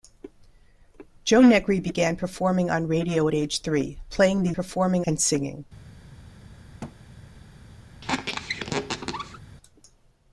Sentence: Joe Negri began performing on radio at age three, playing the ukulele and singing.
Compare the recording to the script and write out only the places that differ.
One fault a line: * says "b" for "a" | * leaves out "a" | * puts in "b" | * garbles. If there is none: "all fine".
* says "performing" for "ukulele"